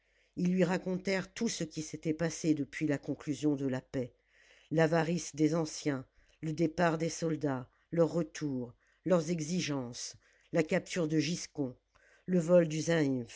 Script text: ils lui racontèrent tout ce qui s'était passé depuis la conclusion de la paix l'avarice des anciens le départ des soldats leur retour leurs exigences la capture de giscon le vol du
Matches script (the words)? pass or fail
pass